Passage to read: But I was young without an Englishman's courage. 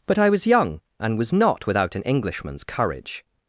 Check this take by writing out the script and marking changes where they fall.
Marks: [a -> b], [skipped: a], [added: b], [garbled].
But I was young [added: and was not] without an Englishman's courage.